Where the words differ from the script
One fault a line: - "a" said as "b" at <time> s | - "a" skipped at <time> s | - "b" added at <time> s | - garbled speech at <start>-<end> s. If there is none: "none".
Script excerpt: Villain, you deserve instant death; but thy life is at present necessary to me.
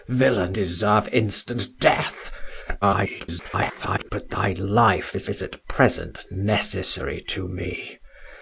- "you" skipped at 0.6 s
- garbled speech at 2.8-4.1 s
- "is" added at 5.3 s